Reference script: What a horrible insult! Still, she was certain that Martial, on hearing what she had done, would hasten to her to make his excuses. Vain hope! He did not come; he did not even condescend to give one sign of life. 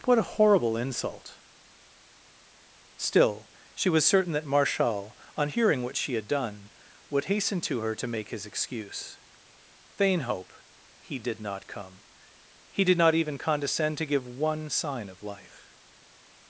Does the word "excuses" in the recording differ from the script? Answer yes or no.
yes